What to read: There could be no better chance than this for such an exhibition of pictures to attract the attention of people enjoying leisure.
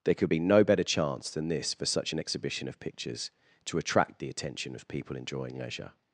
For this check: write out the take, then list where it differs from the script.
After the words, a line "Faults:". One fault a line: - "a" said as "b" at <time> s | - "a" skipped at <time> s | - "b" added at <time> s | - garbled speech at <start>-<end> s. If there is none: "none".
There could be no better chance than this for such an exhibition of pictures to attract the attention of people enjoying leisure.
Faults:
none